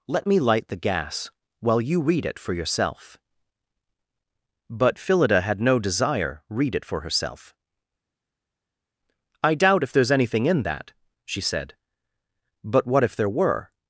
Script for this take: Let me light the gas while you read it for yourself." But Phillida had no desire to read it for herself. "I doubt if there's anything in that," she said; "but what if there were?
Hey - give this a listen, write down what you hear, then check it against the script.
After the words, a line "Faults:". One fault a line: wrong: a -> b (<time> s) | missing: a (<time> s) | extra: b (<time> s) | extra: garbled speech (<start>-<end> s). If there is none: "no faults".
Let me light the gas while you read it for yourself." But Phillida had no desire read it for herself. "I doubt if there's anything in that," she said; "but what if there were?
Faults:
missing: to (6.4 s)